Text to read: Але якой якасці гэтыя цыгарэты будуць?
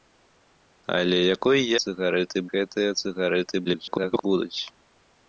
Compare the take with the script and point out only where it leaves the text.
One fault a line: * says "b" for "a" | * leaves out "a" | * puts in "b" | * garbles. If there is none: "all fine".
* says "цыгарэты" for "якасці"
* garbles